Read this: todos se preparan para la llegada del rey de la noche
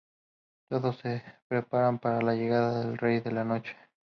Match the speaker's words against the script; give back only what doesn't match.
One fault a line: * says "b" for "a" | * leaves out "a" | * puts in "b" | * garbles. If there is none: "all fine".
all fine